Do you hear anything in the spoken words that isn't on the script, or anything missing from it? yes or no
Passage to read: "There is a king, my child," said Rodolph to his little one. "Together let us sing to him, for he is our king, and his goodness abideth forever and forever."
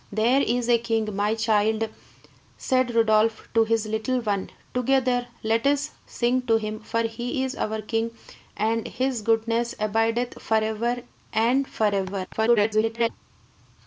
yes